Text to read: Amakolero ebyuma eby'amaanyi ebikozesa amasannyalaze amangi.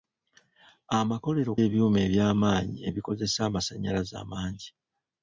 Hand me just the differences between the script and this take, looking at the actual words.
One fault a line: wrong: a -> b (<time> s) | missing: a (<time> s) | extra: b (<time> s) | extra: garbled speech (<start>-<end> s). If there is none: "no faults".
no faults